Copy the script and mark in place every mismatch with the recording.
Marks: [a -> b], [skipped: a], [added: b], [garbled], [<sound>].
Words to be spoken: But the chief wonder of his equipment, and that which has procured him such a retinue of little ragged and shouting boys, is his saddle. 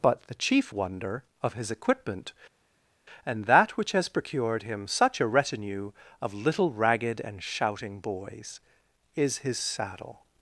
But the chief wonder of his equipment, and that which has procured him such a retinue of little ragged and shouting boys, is his saddle.